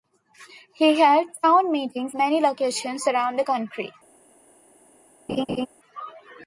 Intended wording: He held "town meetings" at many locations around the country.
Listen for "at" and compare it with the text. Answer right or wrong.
wrong